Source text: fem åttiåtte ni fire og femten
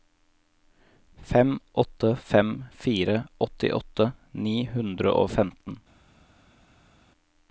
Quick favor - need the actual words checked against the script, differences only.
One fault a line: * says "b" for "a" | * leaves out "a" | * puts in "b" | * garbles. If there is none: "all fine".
* puts in "åtte fem fire"
* says "hundre" for "fire"